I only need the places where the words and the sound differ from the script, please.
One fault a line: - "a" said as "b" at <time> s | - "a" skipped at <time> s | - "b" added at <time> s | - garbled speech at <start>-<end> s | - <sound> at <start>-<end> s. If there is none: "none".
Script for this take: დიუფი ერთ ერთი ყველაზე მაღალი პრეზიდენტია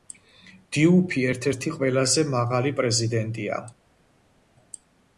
none